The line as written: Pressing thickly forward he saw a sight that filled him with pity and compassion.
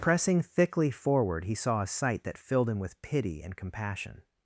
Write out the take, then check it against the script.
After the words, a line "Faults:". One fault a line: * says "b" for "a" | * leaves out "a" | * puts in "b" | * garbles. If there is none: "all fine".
Pressing thickly forward he saw a sight that filled him with pity and compassion.
Faults:
all fine